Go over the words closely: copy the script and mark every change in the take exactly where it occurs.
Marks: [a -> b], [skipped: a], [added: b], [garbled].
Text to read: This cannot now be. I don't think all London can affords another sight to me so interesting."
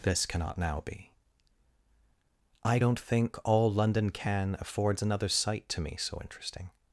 This cannot now be. I don't think all London can affords another sight to me so interesting."